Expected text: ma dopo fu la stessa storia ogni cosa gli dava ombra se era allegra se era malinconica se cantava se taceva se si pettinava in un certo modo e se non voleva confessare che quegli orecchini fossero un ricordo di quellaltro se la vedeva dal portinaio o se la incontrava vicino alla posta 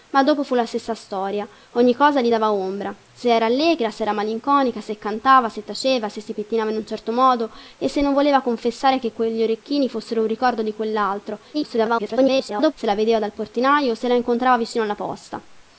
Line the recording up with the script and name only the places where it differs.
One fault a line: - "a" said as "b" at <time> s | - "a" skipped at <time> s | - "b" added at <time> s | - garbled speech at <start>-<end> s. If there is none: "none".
- garbled speech at 11.5-12.7 s